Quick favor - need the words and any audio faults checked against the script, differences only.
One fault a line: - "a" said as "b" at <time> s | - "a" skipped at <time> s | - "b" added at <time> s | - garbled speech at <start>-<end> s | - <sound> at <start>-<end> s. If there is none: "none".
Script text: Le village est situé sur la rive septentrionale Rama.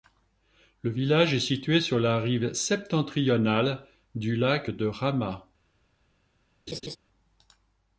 - "du lac de" added at 4.1 s
- laugh at 6.7-7.0 s